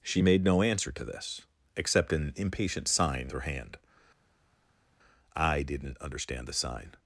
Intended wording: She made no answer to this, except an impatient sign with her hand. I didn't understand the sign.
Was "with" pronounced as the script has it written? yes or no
no